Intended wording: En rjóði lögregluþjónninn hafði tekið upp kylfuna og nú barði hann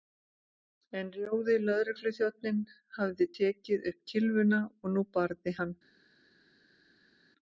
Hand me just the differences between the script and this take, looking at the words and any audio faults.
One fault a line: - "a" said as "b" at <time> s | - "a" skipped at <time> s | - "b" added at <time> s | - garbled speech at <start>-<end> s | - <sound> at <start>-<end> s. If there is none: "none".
none